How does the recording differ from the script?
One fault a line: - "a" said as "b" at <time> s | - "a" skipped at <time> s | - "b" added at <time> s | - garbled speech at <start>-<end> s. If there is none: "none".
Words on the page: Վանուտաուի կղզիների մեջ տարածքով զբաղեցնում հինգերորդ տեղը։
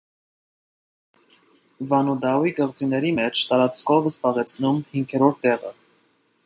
none